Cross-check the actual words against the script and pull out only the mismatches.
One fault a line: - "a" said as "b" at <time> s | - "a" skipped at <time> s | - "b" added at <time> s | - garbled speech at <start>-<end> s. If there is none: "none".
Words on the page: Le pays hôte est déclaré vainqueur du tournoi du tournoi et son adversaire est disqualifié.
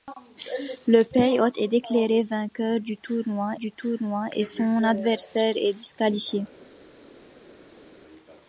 none